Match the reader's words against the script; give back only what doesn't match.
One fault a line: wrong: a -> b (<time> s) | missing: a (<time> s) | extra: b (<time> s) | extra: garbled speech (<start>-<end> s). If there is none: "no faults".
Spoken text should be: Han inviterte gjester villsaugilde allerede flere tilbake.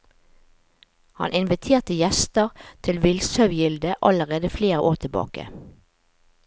extra: til (2.9 s)
extra: år (4.8 s)